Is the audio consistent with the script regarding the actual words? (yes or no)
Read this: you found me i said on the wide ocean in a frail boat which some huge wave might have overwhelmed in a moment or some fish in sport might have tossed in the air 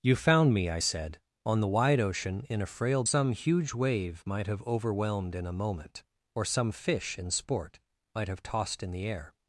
no